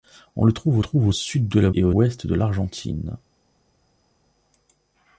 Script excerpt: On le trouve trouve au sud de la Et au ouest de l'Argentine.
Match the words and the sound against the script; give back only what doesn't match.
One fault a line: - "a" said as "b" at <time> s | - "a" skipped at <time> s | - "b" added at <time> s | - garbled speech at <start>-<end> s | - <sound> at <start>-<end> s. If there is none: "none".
none